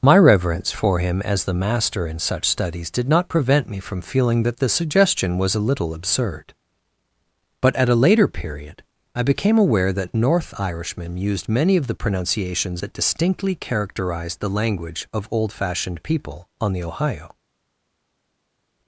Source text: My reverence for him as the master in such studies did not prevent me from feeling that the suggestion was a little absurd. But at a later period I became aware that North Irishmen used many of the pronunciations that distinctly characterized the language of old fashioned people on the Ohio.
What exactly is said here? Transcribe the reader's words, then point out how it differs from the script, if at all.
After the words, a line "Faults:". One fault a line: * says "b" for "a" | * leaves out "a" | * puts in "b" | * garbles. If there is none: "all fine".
My reverence for him as the master in such studies did not prevent me from feeling that the suggestion was a little absurd. But at a later period I became aware that North Irishmen used many of the pronunciations that distinctly characterized the language of old fashioned people on the Ohio.
Faults:
all fine